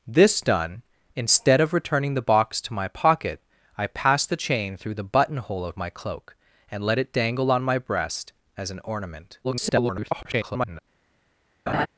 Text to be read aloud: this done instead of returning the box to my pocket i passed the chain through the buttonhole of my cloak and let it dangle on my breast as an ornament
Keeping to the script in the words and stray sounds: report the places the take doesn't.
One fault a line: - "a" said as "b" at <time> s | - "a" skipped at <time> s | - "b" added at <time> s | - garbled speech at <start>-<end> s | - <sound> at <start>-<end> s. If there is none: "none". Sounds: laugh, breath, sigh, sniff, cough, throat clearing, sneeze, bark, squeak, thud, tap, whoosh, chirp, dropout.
- garbled speech at 9.4-10.8 s
- laugh at 11.7-11.9 s